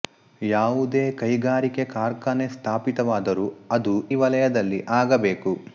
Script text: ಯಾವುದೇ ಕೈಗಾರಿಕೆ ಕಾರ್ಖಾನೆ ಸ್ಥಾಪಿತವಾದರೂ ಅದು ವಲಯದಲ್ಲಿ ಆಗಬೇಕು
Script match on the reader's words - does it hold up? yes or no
yes